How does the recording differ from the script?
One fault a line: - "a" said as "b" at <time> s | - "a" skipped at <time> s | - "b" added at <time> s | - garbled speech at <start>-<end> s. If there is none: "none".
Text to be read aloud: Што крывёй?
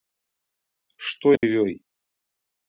none